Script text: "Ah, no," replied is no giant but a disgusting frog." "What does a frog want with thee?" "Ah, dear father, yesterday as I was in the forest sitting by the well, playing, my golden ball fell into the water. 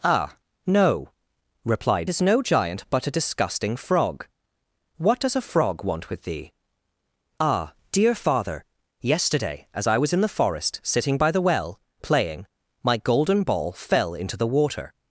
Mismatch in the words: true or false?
false